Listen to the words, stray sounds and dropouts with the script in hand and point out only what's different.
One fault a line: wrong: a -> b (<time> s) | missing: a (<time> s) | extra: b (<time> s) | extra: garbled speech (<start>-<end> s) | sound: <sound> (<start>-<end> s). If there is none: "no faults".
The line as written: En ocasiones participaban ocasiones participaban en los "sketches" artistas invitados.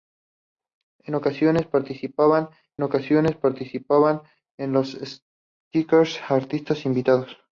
no faults